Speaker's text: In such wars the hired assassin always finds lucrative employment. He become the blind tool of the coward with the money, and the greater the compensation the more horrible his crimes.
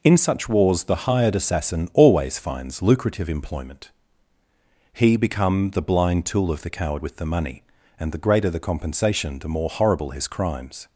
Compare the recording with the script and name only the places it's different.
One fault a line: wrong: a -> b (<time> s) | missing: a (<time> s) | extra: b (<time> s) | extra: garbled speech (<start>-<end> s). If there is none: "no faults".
no faults